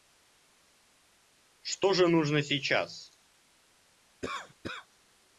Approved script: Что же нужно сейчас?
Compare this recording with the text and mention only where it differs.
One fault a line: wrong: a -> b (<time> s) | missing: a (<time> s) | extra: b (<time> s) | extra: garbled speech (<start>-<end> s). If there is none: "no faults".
no faults